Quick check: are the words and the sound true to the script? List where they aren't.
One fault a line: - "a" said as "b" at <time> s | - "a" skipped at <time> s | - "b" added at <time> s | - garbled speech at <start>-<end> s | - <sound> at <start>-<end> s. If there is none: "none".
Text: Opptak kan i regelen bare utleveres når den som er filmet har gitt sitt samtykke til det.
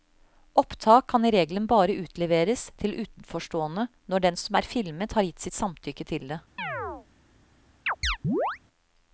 - "til utenforstående" added at 2.8 s
- chirp at 6.6-7.1 s
- chirp at 7.9-8.6 s